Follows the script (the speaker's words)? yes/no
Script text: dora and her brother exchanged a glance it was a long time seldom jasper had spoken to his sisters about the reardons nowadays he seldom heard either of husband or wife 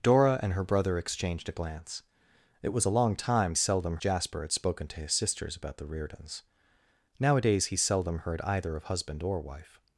yes